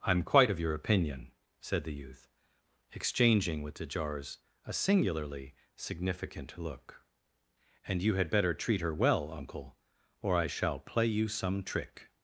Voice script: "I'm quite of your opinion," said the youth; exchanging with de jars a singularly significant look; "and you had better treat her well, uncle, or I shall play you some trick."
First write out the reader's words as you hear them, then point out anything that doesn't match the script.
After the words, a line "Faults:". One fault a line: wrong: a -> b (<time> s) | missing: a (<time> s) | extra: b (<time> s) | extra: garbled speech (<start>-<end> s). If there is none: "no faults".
"I'm quite of your opinion," said the youth; exchanging with de jars a singularly significant look; "and you had better treat her well, uncle, or I shall play you some trick."
Faults:
no faults